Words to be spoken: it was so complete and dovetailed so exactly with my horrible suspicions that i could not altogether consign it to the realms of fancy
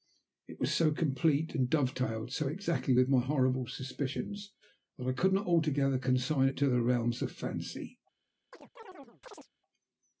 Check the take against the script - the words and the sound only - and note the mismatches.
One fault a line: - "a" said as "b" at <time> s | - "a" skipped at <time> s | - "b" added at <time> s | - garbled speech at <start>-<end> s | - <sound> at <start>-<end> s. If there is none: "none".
- chirp at 8.5-9.5 s